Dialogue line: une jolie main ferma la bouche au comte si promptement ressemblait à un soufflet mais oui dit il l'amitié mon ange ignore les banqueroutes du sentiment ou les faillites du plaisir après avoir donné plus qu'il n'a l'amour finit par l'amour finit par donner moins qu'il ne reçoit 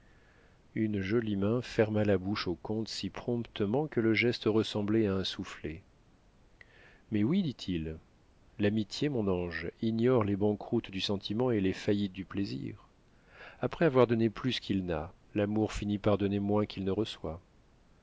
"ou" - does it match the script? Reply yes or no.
no